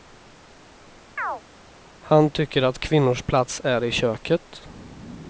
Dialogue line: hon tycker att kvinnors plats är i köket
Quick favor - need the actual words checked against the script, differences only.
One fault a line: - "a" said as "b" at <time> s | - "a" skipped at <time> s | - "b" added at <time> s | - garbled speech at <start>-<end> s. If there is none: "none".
- "hon" said as "han" at 2.0 s